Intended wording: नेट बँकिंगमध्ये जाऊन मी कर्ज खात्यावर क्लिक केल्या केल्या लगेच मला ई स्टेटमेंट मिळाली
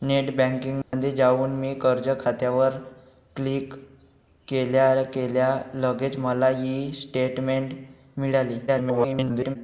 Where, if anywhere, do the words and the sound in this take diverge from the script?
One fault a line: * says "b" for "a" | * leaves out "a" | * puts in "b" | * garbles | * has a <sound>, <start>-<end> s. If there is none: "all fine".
* has a dropout, 0.8-0.9 s
* garbles